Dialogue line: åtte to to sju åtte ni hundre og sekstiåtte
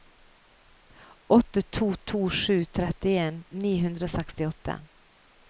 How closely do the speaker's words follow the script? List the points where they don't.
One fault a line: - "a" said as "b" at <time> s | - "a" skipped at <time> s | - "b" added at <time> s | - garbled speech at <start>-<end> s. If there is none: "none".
- "åtte" said as "trettien" at 2.8 s